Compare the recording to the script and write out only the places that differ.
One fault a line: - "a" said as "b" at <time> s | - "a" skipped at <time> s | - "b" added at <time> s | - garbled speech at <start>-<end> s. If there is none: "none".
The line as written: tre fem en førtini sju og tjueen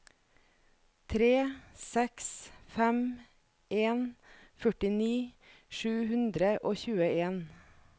- "seks" added at 1.8 s
- "hundre" added at 6.1 s